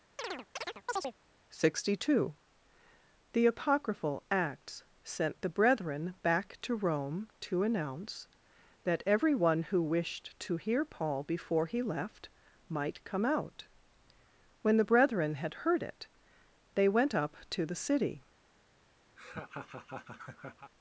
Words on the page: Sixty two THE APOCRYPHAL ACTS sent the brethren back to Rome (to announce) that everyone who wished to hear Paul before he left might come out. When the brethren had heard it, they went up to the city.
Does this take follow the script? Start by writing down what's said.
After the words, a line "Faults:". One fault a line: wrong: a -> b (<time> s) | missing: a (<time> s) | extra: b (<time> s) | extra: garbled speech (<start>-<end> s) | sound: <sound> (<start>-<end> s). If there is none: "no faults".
Sixty two THE APOCRYPHAL ACTS sent the brethren back to Rome (to announce) that everyone who wished to hear Paul before he left might come out. When the brethren had heard it, they went up to the city.
Faults:
sound: chirp (0.2-1.1 s)
sound: laugh (19.2-20.7 s)